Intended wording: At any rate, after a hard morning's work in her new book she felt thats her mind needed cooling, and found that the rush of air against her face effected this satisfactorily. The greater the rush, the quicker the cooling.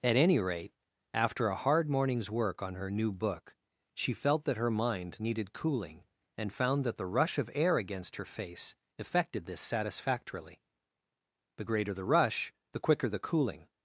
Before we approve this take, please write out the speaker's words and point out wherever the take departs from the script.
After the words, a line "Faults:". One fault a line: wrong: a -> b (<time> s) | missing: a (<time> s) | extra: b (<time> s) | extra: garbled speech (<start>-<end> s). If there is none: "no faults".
At any rate, after a hard morning's work on her new book she felt that her mind needed cooling, and found that the rush of air against her face effected this satisfactorily. The greater the rush, the quicker the cooling.
Faults:
wrong: in -> on (2.6 s)
wrong: thats -> that (4.5 s)